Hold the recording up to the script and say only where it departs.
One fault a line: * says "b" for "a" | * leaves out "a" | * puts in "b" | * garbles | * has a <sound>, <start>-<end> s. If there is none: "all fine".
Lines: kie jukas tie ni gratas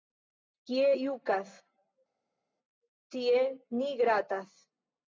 all fine